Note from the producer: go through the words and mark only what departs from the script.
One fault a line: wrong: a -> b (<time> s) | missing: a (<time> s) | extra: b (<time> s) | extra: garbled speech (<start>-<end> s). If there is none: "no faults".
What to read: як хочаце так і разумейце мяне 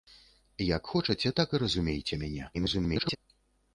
extra: garbled speech (2.5-3.2 s)